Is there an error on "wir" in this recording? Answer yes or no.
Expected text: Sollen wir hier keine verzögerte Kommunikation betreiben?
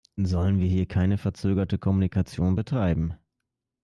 no